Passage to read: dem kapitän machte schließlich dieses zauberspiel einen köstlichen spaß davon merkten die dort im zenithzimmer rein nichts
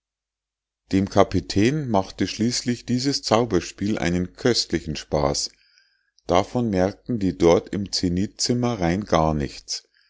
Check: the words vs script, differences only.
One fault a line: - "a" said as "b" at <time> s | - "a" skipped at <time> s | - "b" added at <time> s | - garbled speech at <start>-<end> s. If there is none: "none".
- "gar" added at 9.0 s